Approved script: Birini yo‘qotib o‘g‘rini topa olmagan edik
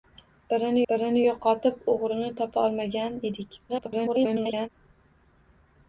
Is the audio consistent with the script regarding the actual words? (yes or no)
no